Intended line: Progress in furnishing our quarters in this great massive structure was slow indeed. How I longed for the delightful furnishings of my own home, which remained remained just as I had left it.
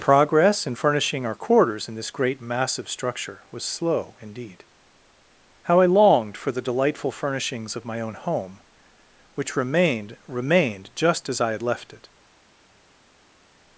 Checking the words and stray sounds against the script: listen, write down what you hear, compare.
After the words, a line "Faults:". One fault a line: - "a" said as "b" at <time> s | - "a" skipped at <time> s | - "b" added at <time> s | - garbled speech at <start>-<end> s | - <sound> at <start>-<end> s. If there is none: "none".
Progress in furnishing our quarters in this great massive structure was slow indeed. How I longed for the delightful furnishings of my own home, which remained remained just as I had left it.
Faults:
none